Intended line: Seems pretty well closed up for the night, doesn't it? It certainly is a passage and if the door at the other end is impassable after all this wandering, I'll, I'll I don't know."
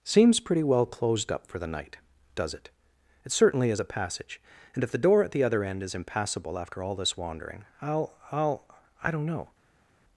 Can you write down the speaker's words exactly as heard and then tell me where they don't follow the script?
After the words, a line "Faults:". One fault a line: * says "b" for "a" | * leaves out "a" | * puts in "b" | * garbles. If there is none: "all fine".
Seems pretty well closed up for the night, does it? It certainly is a passage and if the door at the other end is impassable after all this wandering, I'll, I'll I don't know."
Faults:
* says "does" for "doesn't"